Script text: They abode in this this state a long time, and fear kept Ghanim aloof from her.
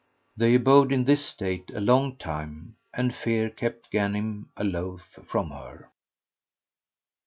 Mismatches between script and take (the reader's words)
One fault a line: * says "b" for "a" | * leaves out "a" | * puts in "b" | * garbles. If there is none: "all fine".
* leaves out "this"